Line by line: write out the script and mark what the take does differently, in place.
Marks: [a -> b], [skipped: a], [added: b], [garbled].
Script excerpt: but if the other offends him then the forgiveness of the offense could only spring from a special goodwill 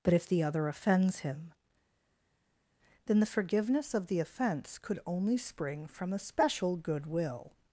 but if the other offends him then the forgiveness of the offense could only spring from a special goodwill